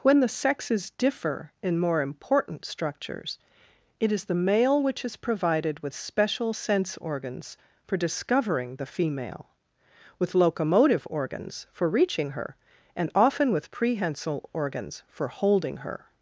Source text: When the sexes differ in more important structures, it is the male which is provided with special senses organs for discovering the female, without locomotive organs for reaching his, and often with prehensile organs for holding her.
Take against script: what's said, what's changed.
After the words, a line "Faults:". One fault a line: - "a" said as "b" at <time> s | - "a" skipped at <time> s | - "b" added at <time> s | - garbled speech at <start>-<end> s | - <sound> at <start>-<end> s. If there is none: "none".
When the sexes differ in more important structures, it is the male which is provided with special sense organs for discovering the female, with locomotive organs for reaching her, and often with prehensile organs for holding her.
Faults:
- "senses" said as "sense" at 6.5 s
- "without" said as "with" at 10.2 s
- "his" said as "her" at 12.3 s